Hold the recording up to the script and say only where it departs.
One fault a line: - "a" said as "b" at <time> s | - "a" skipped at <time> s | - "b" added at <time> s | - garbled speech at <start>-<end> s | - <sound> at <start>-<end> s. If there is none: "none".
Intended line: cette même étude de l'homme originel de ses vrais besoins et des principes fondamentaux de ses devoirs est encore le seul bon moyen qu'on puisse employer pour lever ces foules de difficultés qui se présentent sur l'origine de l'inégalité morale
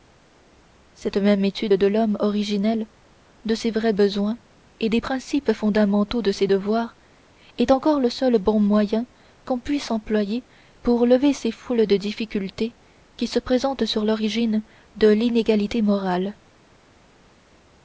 none